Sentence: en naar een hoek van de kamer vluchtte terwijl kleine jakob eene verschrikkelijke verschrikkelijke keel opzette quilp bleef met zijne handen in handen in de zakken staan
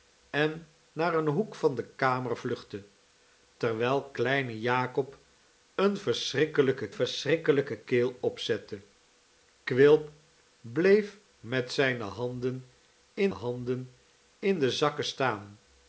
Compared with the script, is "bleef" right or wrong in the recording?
right